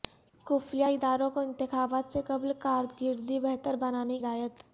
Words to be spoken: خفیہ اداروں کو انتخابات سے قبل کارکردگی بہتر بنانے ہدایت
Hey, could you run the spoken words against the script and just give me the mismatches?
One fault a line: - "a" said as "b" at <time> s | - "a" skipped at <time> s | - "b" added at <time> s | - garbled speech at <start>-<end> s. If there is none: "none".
none